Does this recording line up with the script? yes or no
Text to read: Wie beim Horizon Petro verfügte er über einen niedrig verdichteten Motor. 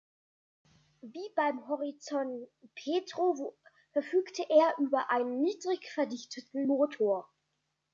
yes